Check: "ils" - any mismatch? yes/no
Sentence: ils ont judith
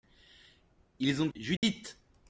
no